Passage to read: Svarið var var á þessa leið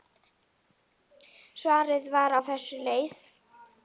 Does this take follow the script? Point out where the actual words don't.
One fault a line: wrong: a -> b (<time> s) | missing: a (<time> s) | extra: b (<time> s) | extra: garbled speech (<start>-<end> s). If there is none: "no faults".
missing: var (2.4 s)